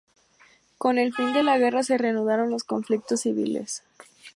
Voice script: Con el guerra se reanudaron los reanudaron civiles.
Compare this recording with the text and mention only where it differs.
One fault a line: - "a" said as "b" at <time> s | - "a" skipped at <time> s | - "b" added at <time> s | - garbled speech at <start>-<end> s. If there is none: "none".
- "fin de la" added at 1.1 s
- "reanudaron" said as "conflictos" at 2.6 s